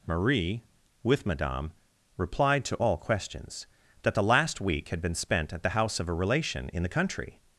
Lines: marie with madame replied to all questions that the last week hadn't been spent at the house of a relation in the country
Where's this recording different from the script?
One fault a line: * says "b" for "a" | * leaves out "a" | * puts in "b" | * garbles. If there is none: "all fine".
* says "had" for "hadn't"